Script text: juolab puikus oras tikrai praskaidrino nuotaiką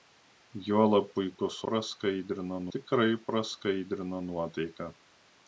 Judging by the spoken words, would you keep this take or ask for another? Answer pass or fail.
fail